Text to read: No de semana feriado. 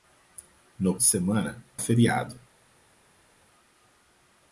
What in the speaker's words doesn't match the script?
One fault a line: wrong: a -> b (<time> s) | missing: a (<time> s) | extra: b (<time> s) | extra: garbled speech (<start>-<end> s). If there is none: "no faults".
no faults